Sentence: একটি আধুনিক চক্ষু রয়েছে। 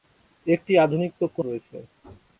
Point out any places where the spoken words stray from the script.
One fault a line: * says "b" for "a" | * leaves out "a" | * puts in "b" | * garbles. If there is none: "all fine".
all fine